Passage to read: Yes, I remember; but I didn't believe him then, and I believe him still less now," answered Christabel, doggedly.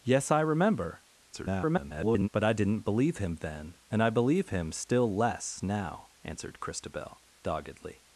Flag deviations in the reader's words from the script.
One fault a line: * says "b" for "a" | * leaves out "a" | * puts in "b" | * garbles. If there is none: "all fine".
* garbles